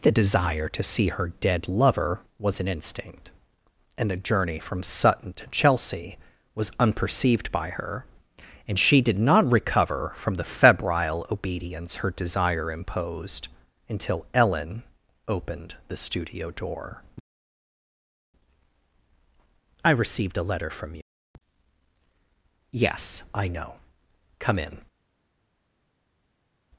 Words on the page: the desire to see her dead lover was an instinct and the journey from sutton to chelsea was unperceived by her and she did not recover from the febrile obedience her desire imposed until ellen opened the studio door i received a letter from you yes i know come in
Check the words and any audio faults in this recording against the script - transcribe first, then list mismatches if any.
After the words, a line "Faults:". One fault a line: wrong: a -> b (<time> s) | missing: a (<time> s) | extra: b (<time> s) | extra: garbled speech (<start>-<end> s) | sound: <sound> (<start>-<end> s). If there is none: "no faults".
the desire to see her dead lover was an instinct and the journey from sutton to chelsea was unperceived by her and she did not recover from the febrile obedience her desire imposed until ellen opened the studio door i received a letter from you yes i know come in
Faults:
no faults